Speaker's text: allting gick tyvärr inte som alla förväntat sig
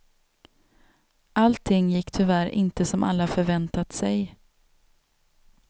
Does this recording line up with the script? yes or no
yes